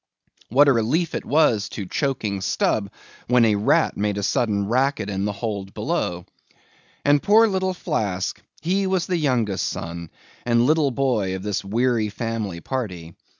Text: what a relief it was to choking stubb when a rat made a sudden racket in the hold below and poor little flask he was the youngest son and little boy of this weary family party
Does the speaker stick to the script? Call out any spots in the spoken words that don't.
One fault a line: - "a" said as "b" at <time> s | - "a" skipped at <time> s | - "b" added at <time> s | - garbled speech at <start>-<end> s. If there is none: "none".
none